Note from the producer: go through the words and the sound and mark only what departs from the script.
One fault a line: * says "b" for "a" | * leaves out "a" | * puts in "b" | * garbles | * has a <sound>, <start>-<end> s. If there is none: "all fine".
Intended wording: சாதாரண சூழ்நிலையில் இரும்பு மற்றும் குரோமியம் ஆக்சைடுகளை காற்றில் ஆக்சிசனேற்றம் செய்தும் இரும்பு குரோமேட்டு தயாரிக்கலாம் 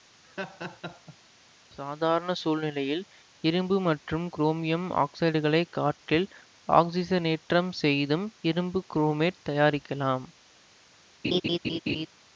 * has a laugh, 0.2-1.2 s
* has a laugh, 11.2-12.1 s